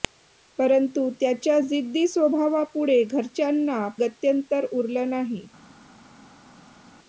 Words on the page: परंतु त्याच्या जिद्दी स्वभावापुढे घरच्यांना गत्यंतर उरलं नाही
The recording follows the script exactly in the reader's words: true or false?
true